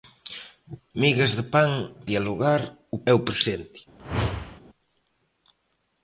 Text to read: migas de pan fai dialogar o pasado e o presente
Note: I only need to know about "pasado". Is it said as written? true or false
false